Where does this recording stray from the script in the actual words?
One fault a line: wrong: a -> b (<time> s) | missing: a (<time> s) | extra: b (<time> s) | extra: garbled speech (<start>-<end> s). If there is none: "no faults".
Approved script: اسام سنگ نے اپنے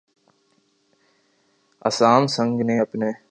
no faults